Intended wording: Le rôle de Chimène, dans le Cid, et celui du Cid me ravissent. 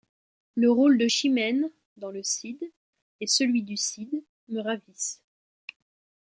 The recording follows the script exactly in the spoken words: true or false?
true